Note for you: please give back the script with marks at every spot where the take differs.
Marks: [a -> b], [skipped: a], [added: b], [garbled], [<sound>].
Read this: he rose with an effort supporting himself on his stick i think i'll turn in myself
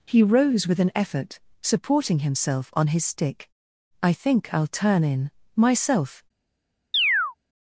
he rose with an effort supporting himself on his stick i think i'll turn in myself [chirp]